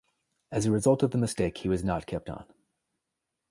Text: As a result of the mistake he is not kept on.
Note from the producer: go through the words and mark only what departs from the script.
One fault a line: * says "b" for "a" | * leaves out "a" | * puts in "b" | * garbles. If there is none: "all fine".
* says "was" for "is"